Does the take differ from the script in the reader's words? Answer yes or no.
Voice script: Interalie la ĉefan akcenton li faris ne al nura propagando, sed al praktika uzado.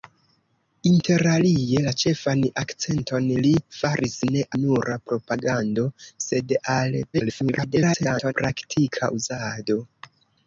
yes